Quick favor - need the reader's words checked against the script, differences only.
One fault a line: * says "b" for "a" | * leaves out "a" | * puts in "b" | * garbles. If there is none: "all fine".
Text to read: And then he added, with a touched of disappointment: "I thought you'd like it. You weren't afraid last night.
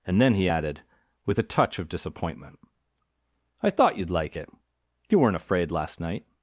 * says "touch" for "touched"